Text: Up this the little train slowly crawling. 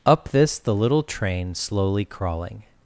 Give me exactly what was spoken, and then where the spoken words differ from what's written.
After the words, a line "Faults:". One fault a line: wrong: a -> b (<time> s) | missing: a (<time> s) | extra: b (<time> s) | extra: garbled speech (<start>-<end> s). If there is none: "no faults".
Up this the little train slowly crawling.
Faults:
no faults